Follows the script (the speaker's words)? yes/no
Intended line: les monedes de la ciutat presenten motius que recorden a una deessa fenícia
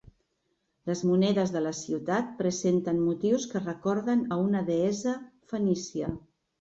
yes